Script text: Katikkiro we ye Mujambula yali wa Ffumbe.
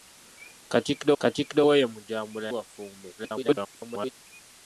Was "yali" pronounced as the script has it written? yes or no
no